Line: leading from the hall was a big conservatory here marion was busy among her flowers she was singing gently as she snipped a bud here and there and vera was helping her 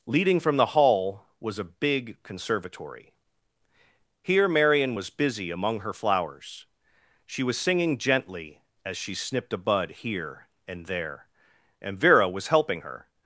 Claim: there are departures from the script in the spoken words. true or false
false